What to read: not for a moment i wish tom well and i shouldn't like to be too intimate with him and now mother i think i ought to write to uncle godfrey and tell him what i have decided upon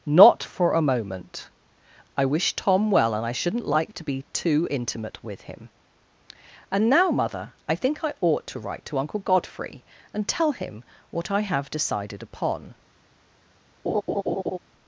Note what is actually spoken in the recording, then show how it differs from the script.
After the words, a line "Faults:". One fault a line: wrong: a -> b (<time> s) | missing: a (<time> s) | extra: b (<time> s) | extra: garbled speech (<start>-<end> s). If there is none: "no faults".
not for a moment i wish tom well and i shouldn't like to be too intimate with him and now mother i think i ought to write to uncle godfrey and tell him what i have decided upon
Faults:
no faults